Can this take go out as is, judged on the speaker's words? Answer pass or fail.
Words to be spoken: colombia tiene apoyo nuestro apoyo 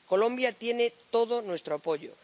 fail